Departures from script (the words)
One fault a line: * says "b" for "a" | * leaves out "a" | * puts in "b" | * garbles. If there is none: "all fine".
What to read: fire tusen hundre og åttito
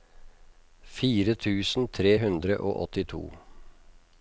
* puts in "tre"